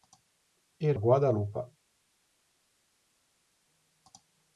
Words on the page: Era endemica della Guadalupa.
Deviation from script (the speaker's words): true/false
true